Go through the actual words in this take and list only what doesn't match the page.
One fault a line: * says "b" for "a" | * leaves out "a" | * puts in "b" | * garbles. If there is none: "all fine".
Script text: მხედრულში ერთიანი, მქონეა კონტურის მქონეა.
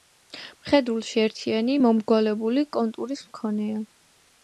* says "მომრგვალებული" for "მქონეა"